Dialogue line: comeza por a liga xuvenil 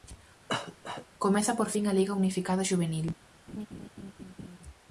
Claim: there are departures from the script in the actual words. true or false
true